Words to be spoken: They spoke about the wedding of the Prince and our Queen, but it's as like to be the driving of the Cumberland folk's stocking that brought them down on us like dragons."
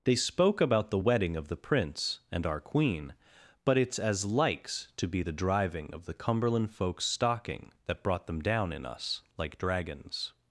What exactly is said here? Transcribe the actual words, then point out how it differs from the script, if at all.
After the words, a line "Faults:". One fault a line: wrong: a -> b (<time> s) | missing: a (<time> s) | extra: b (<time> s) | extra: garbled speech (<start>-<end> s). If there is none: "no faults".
They spoke about the wedding of the Prince and our Queen, but it's as likes to be the driving of the Cumberland folk's stocking that brought them down in us like dragons."
Faults:
wrong: like -> likes (4.2 s)
wrong: on -> in (8.7 s)